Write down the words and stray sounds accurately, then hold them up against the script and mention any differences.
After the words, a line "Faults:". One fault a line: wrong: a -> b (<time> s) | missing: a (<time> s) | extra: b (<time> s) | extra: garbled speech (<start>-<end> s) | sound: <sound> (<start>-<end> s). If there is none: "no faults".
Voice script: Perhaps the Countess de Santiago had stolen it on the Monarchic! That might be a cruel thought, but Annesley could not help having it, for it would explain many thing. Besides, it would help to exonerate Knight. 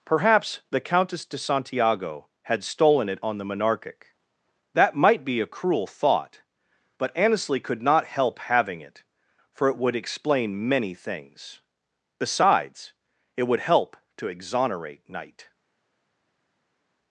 Perhaps the Countess de Santiago had stolen it on the Monarchic! That might be a cruel thought, but Annesley could not help having it, for it would explain many things. Besides, it would help to exonerate Knight.
Faults:
wrong: thing -> things (10.9 s)